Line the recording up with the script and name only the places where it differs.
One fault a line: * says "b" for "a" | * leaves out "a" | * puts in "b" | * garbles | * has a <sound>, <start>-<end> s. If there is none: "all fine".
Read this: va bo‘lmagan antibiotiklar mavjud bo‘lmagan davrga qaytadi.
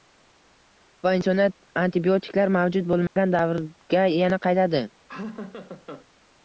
* says "insoniyat" for "bo‘lmagan"
* has a dropout, 3.1-3.2 s
* puts in "yana"
* has a laugh, 5.1-6.1 s